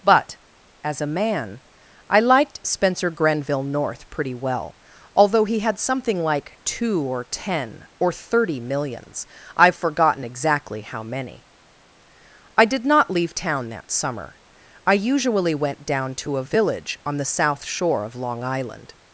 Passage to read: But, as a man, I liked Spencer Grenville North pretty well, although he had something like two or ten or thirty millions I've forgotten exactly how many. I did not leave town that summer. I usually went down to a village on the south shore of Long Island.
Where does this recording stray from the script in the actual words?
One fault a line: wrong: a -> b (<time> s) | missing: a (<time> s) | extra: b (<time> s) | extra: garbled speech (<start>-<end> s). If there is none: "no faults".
no faults